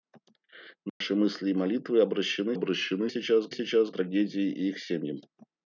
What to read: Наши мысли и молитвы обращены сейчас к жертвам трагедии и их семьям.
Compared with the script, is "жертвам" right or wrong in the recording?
wrong